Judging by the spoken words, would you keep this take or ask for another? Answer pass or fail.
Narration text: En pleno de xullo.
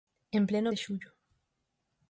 pass